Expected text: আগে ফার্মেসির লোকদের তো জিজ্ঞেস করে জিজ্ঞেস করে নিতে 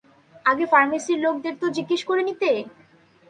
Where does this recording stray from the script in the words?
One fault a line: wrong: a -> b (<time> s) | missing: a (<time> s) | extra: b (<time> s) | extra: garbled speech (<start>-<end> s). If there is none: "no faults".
missing: জিজ্ঞেস করে (2.2 s)